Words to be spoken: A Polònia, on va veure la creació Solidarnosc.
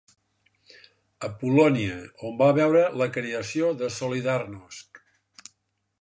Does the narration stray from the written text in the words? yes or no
yes